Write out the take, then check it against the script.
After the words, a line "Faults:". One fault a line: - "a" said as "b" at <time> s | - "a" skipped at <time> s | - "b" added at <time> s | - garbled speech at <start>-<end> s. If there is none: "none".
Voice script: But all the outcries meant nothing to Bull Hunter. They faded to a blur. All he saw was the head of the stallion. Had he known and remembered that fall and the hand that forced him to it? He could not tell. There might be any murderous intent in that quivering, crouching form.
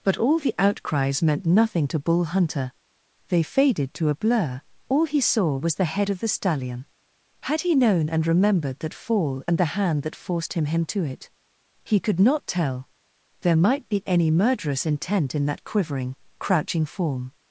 But all the outcries meant nothing to Bull Hunter. They faded to a blur. All he saw was the head of the stallion. Had he known and remembered that fall and the hand that forced him him to it? He could not tell. There might be any murderous intent in that quivering, crouching form.
Faults:
- "him" added at 10.7 s